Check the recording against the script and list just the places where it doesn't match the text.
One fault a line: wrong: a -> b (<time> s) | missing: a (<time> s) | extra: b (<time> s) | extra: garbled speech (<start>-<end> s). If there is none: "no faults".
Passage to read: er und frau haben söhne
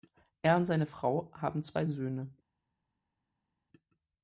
extra: seine (0.7 s)
extra: zwei (1.6 s)